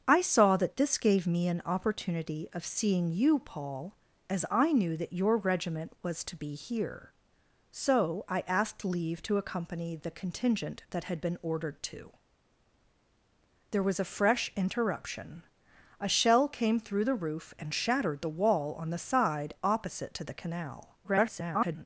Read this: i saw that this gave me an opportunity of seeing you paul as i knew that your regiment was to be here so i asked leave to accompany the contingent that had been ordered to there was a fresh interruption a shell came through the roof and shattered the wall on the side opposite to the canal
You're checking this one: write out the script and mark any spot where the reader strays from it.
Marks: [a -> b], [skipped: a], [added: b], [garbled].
i saw that this gave me an opportunity of seeing you paul as i knew that your regiment was to be here so i asked leave to accompany the contingent that had been ordered to there was a fresh interruption a shell came through the roof and shattered the wall on the side opposite to the canal [garbled]